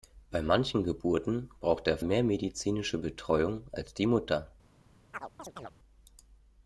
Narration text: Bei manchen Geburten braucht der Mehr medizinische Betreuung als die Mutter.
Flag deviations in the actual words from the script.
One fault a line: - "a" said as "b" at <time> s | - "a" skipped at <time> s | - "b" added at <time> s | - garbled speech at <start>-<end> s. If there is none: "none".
none